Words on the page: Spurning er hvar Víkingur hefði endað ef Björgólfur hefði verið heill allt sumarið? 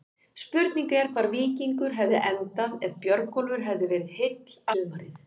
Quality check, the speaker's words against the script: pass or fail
fail